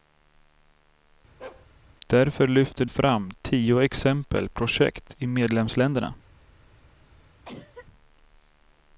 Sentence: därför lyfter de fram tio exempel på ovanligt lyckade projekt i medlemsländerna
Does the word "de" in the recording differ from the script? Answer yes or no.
yes